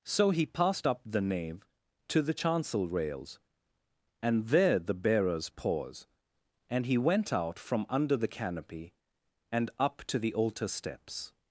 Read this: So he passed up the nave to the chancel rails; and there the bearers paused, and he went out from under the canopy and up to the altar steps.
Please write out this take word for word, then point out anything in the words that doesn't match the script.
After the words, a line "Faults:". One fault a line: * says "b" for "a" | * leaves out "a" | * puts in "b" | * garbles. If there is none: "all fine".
So he passed up the nave to the chancel rails; and there the bearers pause, and he went out from under the canopy and up to the altar steps.
Faults:
* says "pause" for "paused"